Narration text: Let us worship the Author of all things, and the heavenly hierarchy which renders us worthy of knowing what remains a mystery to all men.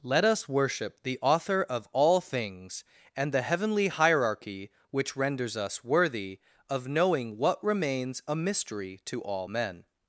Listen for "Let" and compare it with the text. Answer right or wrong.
right